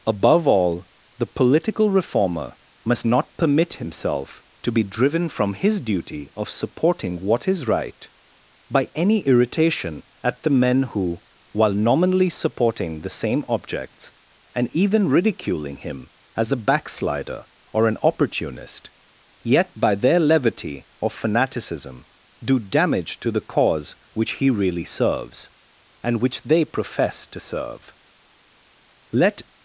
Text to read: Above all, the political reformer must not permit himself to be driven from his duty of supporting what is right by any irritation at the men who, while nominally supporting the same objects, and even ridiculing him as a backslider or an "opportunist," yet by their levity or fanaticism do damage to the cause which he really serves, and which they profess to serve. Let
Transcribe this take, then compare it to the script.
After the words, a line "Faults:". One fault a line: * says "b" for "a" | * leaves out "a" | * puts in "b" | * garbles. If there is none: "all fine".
Above all, the political reformer must not permit himself to be driven from his duty of supporting what is right by any irritation at the men who, while nominally supporting the same objects, and even ridiculing him as a backslider or an "opportunist," yet by their levity or fanaticism do damage to the cause which he really serves, and which they profess to serve. Let
Faults:
all fine